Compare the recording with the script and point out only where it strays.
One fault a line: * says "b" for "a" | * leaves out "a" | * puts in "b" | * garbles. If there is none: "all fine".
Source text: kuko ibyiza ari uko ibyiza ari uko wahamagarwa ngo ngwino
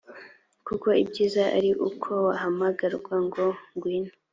* leaves out "ibyiza ari uko"